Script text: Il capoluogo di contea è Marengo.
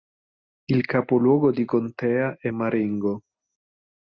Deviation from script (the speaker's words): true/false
false